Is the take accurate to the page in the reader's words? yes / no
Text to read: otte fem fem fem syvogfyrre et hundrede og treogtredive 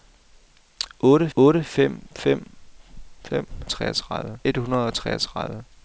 no